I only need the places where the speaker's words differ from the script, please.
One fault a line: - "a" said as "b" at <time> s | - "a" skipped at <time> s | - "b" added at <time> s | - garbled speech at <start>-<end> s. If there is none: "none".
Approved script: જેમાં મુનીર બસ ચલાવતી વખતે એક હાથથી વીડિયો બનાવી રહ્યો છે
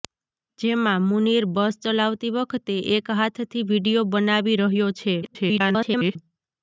- garbled speech at 5.2-6.2 s